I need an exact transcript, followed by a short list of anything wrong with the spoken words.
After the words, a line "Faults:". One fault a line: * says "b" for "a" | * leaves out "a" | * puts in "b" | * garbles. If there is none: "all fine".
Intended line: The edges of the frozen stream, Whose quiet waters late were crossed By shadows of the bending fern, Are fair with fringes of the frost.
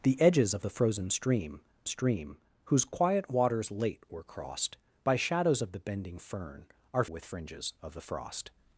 The edges of the frozen stream stream, Whose quiet waters late were crossed By shadows of the bending fern, Are with fringes of the frost.
Faults:
* puts in "stream"
* leaves out "fair"